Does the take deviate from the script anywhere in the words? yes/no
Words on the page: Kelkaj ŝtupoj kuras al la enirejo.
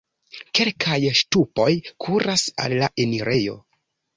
no